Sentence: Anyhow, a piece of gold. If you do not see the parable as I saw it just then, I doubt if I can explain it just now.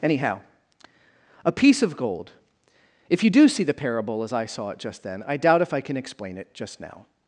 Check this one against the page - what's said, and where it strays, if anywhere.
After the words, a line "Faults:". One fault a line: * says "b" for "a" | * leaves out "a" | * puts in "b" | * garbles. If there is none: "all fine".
Anyhow, a piece of gold. If you do see the parable as I saw it just then, I doubt if I can explain it just now.
Faults:
* leaves out "not"